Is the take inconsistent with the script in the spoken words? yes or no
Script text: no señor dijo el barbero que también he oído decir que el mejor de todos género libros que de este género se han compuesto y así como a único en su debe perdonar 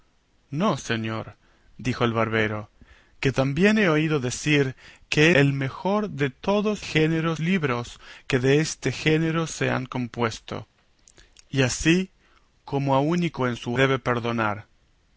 no